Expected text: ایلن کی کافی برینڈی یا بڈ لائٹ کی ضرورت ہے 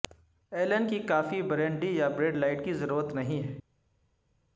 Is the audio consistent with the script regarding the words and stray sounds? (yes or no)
no